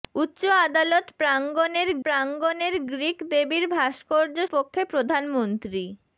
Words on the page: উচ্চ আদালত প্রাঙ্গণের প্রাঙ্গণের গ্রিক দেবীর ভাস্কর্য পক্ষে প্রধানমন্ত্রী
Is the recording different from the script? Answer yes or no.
no